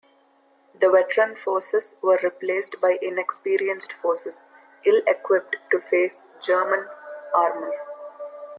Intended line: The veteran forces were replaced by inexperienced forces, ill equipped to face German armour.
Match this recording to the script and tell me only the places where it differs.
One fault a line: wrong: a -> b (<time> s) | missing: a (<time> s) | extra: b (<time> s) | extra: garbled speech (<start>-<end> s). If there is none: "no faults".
no faults